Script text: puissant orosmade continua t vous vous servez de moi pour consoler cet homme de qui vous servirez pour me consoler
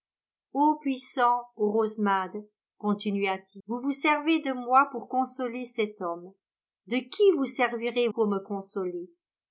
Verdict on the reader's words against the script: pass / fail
pass